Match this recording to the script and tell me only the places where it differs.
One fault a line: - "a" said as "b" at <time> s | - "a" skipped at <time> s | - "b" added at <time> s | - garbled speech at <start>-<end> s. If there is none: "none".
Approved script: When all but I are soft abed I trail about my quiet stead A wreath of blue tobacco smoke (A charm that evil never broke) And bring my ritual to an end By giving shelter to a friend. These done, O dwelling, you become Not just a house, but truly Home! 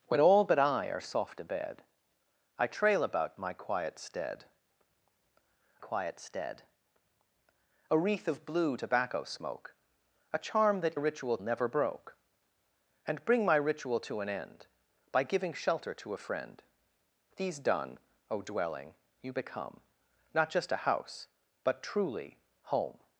- "quiet stead" added at 5.8 s
- "evil" said as "ritual" at 10.9 s